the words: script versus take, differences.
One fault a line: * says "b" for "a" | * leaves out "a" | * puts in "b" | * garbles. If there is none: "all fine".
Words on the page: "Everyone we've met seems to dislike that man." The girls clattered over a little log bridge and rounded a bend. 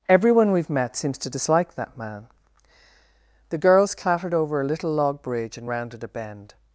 all fine